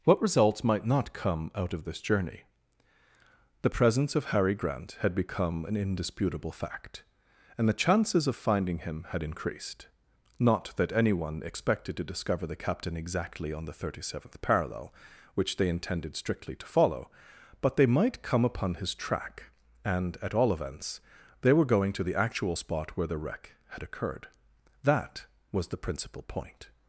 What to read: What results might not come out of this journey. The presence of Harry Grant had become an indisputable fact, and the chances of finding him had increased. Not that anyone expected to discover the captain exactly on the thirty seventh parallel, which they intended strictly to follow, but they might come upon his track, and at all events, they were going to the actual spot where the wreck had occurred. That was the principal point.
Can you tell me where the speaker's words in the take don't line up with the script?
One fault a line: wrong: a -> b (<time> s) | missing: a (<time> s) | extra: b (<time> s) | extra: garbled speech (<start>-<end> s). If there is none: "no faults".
no faults